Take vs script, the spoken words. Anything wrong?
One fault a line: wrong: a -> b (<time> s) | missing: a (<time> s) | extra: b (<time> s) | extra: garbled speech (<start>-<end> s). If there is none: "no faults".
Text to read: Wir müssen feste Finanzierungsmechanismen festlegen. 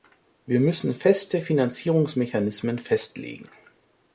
no faults